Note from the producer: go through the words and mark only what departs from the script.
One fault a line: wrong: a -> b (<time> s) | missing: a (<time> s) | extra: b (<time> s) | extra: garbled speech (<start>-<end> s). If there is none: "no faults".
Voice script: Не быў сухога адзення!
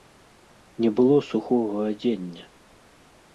wrong: быў -> было (1.0 s)